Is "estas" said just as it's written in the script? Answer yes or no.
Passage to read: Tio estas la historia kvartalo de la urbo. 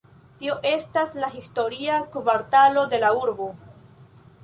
yes